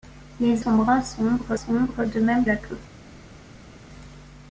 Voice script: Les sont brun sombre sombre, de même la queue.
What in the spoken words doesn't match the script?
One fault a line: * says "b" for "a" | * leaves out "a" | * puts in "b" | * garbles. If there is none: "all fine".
all fine